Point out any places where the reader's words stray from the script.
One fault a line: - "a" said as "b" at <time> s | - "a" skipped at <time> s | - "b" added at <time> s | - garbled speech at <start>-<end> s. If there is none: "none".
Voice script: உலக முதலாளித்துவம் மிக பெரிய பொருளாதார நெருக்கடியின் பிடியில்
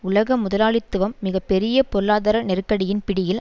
none